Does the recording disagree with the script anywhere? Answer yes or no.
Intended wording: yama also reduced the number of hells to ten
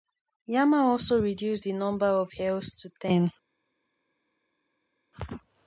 no